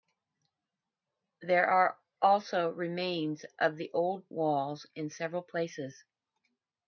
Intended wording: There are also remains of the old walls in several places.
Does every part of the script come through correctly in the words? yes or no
yes